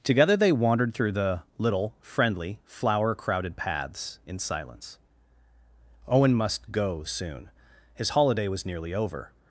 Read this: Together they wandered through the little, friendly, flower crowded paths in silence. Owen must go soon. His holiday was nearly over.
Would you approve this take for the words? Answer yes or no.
yes